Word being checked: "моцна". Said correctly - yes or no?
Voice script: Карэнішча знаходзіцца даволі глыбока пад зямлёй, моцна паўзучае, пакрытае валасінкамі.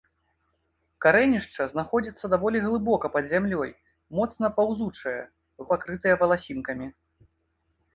yes